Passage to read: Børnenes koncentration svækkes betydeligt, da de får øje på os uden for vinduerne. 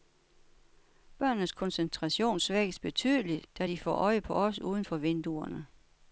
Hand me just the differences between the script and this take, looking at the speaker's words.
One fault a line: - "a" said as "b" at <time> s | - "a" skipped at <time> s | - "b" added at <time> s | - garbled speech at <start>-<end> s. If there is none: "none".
none